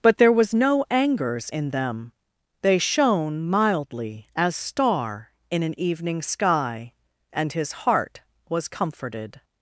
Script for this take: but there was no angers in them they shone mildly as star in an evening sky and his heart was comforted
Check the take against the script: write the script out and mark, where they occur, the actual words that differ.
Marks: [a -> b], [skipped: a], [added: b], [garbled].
but there was no angers in them they shone mildly as star in an evening sky and his heart was comforted